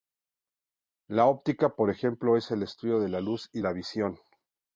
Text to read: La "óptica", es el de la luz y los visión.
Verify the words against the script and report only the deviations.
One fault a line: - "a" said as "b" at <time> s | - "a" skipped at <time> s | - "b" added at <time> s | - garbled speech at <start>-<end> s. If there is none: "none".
- "por ejemplo" added at 1.8 s
- "estudio" added at 2.6 s
- "los" said as "la" at 3.6 s